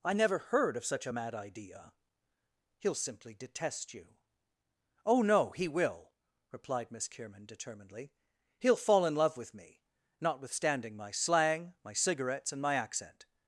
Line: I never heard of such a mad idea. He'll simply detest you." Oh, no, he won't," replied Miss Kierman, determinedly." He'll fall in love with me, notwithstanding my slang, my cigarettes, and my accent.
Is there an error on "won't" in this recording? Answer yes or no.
yes